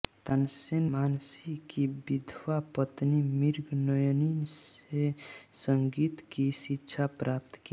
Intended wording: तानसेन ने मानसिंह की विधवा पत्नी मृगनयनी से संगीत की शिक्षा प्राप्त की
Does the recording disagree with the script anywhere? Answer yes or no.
yes